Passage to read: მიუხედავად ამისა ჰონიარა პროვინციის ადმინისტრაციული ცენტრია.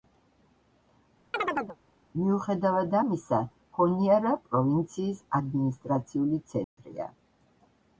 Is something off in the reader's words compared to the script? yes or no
no